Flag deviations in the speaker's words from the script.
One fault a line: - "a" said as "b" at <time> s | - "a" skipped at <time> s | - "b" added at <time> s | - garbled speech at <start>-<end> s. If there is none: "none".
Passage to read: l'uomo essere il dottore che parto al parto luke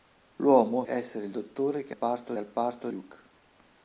none